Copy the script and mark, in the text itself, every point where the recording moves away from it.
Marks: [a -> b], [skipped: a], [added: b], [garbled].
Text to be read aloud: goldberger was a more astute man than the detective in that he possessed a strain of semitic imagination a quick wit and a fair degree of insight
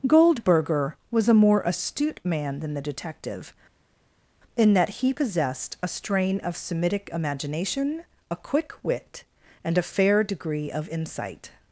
goldberger was a more astute man than the detective in that he possessed a strain of semitic imagination a quick wit and a fair degree of insight